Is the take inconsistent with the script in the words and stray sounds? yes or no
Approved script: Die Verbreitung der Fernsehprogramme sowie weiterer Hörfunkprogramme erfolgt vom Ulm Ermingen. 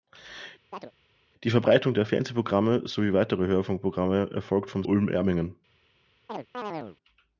yes